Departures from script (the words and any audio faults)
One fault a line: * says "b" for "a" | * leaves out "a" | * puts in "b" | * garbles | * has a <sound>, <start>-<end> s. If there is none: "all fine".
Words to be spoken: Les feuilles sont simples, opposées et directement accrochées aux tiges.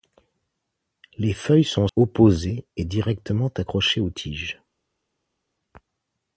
* leaves out "simples"